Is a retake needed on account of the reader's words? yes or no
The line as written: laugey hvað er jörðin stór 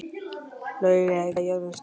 yes